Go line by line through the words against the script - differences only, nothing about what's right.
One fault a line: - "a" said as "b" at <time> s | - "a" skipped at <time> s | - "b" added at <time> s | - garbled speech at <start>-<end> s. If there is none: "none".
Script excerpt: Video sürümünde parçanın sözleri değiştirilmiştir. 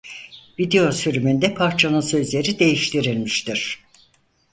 none